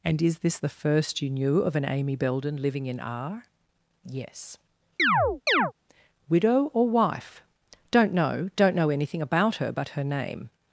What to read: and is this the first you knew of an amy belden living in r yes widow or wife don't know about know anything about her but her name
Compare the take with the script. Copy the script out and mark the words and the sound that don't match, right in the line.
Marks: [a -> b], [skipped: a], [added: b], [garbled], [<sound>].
and is this the first you knew of an amy belden living in r yes [chirp] widow or wife don't know [about -> don't] know anything about her but her name